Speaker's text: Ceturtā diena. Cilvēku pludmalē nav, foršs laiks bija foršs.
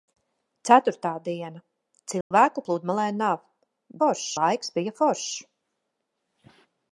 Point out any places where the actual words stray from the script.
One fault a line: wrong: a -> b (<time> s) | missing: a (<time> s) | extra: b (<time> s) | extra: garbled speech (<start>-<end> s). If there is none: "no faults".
no faults